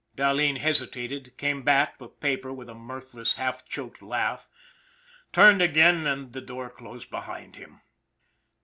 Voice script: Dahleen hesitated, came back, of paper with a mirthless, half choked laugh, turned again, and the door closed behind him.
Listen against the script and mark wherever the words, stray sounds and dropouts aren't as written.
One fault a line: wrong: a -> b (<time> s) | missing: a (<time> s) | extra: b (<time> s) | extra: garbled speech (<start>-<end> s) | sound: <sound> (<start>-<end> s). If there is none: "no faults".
no faults